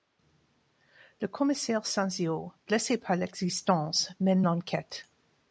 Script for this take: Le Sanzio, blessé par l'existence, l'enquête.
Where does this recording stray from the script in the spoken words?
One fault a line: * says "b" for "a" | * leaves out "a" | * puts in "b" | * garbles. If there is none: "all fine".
* puts in "commissaire"
* puts in "mène"